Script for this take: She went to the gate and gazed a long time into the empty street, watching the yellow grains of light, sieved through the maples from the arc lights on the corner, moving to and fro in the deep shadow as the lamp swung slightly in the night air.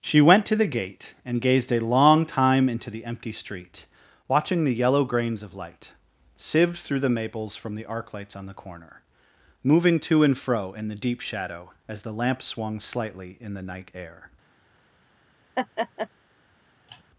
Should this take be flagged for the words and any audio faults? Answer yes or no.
yes